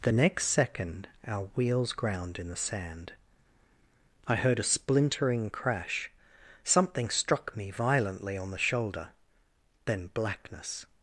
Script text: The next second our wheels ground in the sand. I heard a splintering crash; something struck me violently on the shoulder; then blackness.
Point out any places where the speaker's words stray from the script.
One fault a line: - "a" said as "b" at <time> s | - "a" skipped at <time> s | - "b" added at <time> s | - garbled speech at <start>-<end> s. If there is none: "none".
none